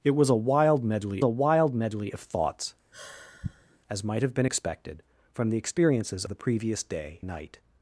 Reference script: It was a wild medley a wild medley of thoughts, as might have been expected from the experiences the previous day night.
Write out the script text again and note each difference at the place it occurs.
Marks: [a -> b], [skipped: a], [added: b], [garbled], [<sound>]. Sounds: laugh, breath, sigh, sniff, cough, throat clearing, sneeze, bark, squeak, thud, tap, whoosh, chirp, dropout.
It was a wild medley a wild medley of thoughts, [sigh] as might have been expected from the experiences the previous day night.